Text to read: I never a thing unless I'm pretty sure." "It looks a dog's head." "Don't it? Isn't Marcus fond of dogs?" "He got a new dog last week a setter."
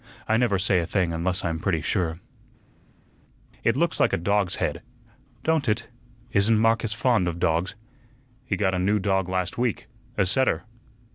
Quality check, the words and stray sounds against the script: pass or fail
fail